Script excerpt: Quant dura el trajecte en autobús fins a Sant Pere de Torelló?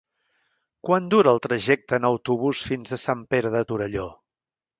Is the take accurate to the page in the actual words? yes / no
yes